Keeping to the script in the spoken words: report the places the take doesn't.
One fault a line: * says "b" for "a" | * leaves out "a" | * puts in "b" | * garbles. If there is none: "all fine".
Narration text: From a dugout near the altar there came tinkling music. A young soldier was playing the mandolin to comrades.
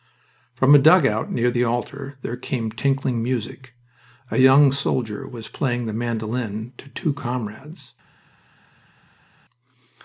* puts in "two"